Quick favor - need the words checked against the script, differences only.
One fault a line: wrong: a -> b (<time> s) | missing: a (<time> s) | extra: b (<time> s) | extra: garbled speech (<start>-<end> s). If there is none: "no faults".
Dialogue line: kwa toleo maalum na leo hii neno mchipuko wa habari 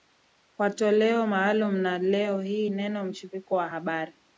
no faults